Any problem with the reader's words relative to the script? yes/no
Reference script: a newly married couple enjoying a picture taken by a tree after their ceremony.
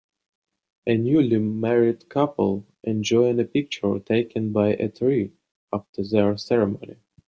no